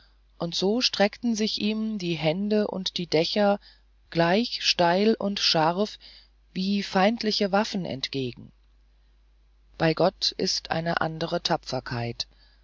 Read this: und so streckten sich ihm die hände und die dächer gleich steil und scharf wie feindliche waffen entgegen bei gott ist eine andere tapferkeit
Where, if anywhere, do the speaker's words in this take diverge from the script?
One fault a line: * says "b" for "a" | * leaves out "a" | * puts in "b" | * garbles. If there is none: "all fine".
all fine